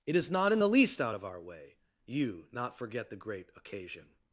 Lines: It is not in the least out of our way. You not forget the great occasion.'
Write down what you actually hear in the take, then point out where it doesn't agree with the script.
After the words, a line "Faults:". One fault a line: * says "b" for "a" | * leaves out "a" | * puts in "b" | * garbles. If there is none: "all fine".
It is not in the least out of our way. You not forget the great occasion.'
Faults:
all fine